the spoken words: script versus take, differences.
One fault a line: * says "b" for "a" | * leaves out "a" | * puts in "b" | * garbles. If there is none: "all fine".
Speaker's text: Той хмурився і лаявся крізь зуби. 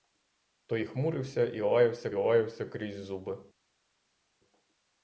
* puts in "лаявся"